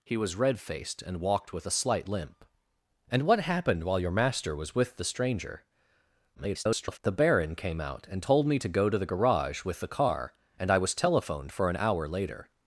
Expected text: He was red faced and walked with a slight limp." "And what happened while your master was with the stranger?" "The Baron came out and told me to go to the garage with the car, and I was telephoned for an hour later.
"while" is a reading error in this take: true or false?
false